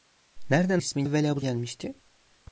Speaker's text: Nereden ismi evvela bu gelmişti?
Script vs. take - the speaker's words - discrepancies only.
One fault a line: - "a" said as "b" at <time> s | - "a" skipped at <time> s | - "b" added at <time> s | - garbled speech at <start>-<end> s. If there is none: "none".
none